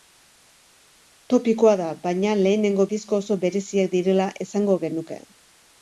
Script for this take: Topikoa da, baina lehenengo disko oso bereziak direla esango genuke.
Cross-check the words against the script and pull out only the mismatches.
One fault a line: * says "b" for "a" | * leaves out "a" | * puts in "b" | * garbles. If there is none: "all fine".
all fine